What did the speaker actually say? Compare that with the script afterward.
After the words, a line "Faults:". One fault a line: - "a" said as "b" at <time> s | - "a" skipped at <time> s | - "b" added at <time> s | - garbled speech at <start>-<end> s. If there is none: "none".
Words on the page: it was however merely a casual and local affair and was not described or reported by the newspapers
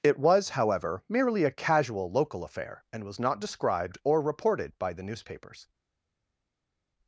it was however merely a casual local affair and was not described or reported by the newspapers
Faults:
- "and" skipped at 2.1 s